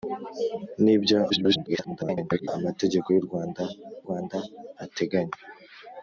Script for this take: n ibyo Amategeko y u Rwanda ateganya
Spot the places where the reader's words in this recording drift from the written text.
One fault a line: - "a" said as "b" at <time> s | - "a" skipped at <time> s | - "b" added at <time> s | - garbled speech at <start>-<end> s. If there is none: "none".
- garbled speech at 1.3-2.5 s
- "Rwanda" added at 4.0 s